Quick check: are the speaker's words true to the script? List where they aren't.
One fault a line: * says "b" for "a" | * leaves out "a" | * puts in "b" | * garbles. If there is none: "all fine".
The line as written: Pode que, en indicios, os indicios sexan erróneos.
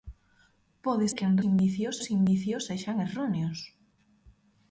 all fine